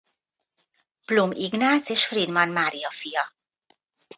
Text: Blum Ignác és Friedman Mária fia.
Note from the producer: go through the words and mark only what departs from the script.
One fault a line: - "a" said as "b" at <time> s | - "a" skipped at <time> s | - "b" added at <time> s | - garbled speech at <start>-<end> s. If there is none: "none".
none